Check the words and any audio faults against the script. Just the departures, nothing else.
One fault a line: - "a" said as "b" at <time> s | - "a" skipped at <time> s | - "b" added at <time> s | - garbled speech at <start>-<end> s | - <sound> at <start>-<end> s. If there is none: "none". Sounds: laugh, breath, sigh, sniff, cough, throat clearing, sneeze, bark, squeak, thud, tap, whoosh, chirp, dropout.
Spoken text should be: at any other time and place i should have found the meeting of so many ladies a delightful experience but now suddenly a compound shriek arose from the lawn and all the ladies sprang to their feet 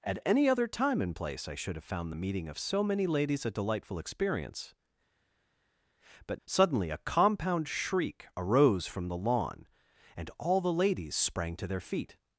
- "now" skipped at 6.4 s